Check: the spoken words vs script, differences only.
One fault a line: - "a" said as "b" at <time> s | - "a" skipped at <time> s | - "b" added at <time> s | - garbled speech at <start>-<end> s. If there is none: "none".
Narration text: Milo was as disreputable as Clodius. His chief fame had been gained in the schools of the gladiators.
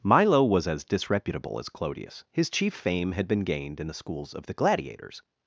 none